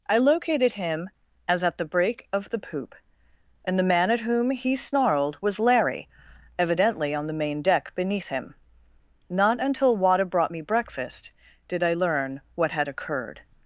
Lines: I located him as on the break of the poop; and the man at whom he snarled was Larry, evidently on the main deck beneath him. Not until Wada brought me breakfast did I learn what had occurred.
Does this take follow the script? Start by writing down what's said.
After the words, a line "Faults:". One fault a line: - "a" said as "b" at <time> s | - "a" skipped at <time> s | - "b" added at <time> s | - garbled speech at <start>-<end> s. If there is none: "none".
I located him as at the break of the poop; and the man at whom he snarled was Larry, evidently on the main deck beneath him. Not until Wada brought me breakfast did I learn what had occurred.
Faults:
- "on" said as "at" at 1.6 s